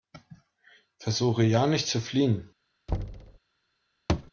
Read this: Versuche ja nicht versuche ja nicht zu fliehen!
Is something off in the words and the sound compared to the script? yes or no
yes